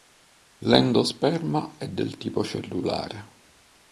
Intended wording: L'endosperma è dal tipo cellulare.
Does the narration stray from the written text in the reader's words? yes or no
yes